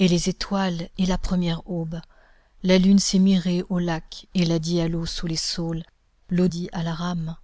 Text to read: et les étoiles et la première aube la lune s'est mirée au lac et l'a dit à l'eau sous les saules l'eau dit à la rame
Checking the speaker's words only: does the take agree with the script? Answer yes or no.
yes